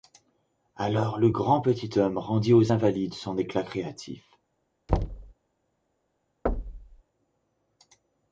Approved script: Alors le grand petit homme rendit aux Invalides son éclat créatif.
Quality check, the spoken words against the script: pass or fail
pass